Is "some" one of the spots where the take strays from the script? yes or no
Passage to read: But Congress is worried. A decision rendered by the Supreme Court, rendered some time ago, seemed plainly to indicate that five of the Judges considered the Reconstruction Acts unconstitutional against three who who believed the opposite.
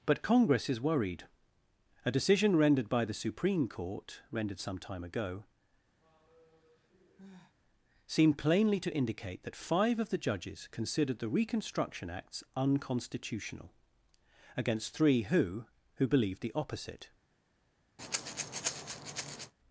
no